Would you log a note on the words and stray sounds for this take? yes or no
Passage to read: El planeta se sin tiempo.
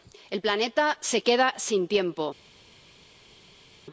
yes